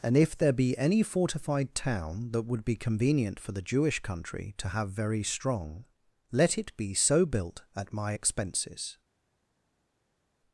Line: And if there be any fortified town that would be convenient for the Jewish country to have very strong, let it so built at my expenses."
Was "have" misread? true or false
false